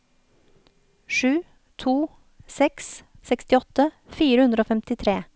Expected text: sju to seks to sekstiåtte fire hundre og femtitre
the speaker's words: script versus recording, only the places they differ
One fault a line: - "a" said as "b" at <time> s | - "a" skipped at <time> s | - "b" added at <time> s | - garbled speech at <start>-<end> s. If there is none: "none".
- "to" skipped at 3.0 s